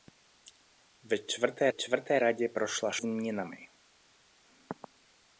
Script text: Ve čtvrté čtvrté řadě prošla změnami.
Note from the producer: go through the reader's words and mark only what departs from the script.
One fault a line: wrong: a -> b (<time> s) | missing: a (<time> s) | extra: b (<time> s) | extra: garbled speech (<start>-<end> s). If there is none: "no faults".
no faults